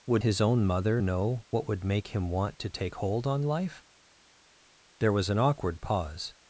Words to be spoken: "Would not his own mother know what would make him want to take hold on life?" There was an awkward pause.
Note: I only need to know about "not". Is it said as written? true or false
false